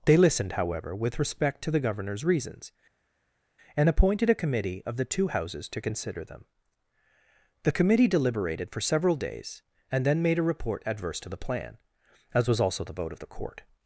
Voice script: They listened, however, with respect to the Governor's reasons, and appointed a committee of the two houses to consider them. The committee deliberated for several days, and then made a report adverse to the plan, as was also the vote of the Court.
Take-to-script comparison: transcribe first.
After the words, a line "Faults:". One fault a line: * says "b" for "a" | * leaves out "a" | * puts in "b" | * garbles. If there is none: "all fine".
They listened, however, with respect to the Governor's reasons, and appointed a committee of the two houses to consider them. The committee deliberated for several days, and then made a report adverse to the plan, as was also the vote of the Court.
Faults:
all fine